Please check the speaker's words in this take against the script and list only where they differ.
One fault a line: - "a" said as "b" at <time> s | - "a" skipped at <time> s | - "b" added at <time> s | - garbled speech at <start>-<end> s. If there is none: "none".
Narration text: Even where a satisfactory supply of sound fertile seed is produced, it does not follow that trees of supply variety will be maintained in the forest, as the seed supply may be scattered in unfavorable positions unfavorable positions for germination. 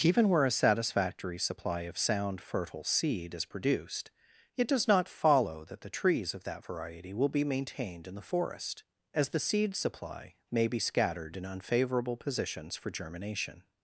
- "the" added at 5.8 s
- "supply" said as "that" at 6.4 s
- "unfavorable positions" skipped at 12.8 s